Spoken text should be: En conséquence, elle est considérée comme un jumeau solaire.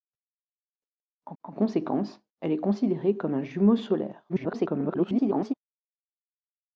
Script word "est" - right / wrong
right